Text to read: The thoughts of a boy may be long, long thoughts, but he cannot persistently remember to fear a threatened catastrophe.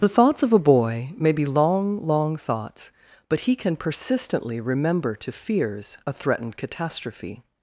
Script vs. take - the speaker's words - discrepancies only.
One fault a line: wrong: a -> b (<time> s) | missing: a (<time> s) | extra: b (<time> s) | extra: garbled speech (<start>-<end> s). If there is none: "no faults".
wrong: cannot -> can (3.5 s)
wrong: fear -> fears (5.3 s)